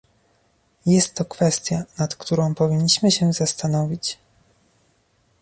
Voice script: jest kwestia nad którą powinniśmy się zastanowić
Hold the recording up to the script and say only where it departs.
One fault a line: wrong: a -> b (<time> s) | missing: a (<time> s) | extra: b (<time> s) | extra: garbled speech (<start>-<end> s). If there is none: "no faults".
extra: to (1.1 s)